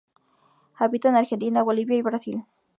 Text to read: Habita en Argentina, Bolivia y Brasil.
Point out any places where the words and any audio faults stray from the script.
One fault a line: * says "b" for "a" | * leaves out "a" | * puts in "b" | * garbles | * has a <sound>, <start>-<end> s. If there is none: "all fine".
all fine